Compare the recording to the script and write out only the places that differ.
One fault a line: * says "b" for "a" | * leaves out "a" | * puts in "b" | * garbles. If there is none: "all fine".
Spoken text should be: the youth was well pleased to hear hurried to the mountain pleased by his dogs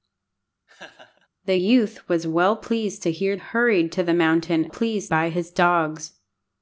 all fine